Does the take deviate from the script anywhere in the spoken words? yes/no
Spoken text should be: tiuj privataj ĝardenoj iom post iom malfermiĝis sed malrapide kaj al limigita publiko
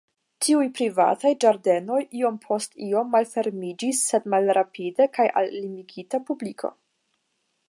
no